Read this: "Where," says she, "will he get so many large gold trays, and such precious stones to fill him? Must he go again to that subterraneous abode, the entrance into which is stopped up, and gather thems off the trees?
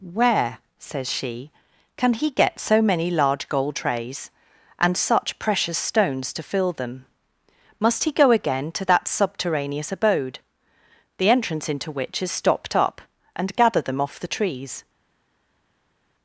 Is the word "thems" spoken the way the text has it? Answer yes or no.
no